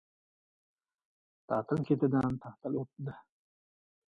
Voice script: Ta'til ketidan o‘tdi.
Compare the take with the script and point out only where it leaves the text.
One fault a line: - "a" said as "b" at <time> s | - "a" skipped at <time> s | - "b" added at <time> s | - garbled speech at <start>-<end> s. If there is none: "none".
- "ta'til" added at 2.4 s